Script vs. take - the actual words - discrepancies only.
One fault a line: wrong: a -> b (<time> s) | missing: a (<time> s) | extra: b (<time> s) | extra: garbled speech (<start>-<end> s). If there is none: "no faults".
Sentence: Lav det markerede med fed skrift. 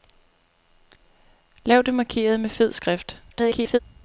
extra: garbled speech (3.3-3.8 s)